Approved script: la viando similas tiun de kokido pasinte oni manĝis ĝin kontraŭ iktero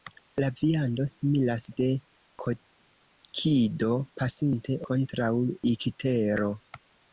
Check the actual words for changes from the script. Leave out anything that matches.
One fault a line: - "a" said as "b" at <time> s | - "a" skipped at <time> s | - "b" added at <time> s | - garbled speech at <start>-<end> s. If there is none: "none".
- "tiun" skipped at 1.6 s
- "oni manĝis ĝin" skipped at 4.8 s